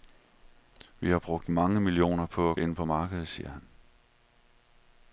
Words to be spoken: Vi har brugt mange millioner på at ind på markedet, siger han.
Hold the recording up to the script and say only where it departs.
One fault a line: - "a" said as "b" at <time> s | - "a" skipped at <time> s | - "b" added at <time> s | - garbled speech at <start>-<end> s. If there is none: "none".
none